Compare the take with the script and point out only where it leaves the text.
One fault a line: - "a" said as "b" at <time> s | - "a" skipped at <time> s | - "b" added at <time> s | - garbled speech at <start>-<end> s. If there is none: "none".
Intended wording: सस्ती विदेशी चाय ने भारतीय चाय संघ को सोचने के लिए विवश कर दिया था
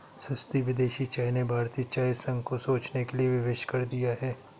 - "था" said as "है" at 4.2 s